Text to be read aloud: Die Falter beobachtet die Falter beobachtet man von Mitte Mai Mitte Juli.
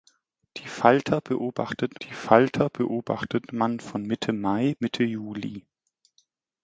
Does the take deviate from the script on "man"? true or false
false